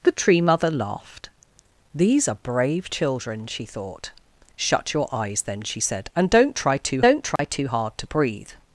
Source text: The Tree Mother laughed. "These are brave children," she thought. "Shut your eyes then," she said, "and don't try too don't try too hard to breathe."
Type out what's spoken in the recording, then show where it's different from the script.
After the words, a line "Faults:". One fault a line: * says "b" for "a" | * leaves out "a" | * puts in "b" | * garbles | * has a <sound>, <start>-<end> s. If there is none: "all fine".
The Tree Mother laughed. "These are brave children," she thought. "Shut your eyes then," she said, "and don't try too don't try too hard to breathe."
Faults:
* has a dropout, 7.4-7.4 s